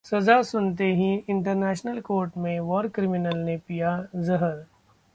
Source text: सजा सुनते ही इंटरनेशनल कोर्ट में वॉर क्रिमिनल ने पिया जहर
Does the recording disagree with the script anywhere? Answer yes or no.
no